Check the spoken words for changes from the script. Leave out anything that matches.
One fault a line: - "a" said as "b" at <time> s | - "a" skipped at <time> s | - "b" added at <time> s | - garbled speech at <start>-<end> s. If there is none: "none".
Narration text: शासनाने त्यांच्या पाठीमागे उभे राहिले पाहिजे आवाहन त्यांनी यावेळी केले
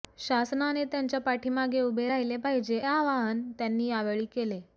none